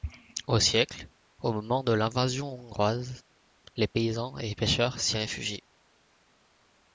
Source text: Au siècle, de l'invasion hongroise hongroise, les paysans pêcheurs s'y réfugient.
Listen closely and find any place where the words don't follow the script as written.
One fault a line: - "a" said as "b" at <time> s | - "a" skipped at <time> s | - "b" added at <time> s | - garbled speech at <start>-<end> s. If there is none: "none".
- "au moment" added at 1.4 s
- "hongroise" skipped at 3.2 s
- "et" added at 4.4 s